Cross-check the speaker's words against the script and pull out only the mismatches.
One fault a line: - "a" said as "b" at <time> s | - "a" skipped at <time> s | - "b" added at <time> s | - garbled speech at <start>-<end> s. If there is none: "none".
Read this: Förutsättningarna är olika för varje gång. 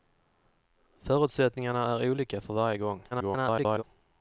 - garbled speech at 3.1-3.8 s